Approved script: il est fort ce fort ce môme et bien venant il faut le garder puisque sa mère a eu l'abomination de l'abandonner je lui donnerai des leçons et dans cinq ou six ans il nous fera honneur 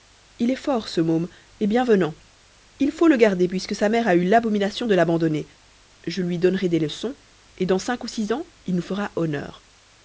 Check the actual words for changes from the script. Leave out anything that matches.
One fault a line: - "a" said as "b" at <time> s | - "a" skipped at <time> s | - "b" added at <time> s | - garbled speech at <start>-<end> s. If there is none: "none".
- "fort ce" skipped at 1.0 s